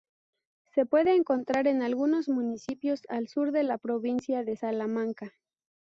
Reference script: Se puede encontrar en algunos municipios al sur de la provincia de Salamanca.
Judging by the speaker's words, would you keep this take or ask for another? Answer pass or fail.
pass